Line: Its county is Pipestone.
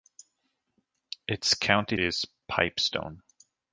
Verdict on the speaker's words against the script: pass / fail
pass